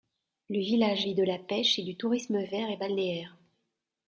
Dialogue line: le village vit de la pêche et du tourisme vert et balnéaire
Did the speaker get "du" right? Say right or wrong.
right